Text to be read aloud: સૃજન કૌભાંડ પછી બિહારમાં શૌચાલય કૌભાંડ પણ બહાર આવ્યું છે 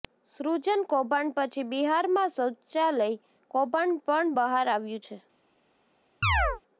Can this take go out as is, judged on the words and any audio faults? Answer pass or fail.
fail